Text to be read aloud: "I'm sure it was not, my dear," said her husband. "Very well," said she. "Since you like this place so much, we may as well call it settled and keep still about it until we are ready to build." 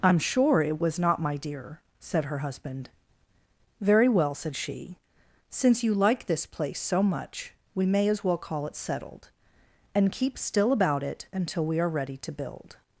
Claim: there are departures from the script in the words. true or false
false